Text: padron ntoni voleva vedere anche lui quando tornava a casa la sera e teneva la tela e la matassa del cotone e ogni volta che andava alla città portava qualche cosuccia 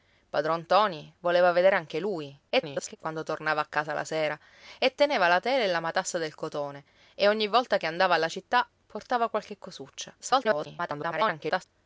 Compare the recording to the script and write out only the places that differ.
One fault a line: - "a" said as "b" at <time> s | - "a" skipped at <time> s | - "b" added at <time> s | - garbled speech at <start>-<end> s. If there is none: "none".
- garbled speech at 2.5-3.0 s
- garbled speech at 10.2-11.6 s